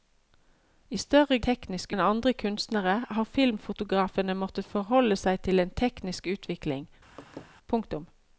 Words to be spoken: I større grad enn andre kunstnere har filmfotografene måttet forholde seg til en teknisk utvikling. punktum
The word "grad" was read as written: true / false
false